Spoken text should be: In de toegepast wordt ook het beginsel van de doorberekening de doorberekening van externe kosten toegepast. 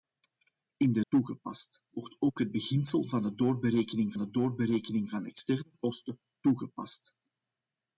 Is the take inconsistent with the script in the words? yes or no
no